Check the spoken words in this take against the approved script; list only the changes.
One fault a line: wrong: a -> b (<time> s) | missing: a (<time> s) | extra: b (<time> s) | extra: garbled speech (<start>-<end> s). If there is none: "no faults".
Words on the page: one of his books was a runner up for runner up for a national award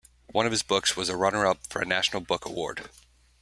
missing: runner up for (1.8 s)
extra: book (2.2 s)